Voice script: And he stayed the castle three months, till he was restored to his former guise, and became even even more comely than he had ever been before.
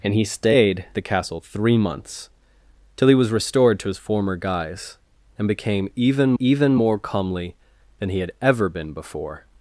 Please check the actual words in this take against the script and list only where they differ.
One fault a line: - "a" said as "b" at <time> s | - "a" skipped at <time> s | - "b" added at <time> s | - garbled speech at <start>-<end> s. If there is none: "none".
none